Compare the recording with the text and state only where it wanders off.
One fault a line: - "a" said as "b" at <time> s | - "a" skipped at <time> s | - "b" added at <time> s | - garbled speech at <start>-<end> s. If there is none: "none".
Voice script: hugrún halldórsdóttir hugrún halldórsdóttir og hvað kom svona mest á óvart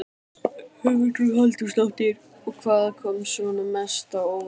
- "hugrún halldórsdóttir" skipped at 2.2 s